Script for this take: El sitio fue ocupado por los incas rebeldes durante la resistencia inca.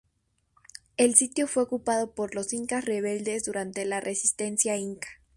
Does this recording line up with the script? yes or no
yes